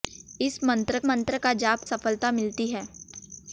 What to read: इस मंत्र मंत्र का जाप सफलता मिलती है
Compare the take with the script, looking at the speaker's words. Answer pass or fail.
pass